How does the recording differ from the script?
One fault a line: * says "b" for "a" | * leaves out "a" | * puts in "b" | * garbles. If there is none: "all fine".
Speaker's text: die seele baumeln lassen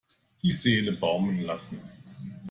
all fine